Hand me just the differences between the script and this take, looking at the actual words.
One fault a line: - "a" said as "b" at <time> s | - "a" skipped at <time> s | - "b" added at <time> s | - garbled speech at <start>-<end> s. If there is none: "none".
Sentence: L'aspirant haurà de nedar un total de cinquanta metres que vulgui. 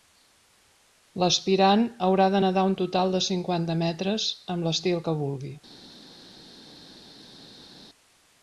- "amb l'estil" added at 4.6 s